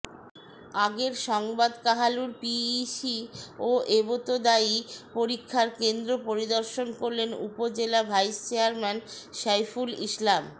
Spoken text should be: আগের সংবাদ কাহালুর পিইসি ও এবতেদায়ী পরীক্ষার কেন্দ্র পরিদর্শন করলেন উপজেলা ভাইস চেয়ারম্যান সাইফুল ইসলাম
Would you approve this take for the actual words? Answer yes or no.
yes